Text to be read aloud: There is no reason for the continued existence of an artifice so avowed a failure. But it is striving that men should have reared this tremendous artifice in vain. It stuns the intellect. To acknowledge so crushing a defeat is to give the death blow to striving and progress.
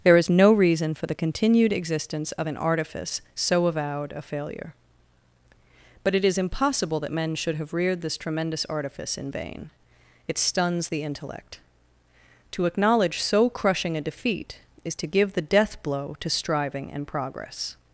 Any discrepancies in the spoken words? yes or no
yes